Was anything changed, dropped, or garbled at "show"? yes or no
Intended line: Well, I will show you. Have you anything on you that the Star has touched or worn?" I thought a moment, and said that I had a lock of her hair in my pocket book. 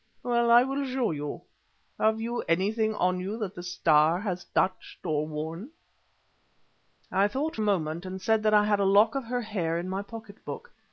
no